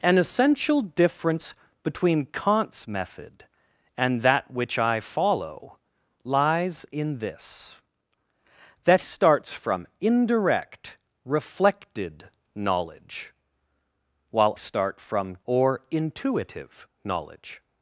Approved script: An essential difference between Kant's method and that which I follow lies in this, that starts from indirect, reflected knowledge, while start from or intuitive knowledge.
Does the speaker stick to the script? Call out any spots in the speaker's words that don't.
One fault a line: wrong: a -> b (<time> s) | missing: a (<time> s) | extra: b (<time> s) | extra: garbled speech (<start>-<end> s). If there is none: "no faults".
no faults